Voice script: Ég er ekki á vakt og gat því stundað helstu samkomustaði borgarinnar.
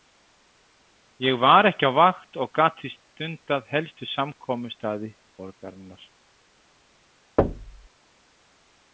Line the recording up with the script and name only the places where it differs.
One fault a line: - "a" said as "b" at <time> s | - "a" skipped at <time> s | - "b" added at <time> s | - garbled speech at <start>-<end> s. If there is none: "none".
- "er" said as "var" at 1.4 s